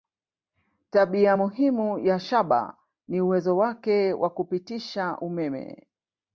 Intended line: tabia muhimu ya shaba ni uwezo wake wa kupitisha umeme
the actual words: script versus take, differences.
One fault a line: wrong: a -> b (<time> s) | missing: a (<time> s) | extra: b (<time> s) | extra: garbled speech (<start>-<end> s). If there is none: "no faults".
no faults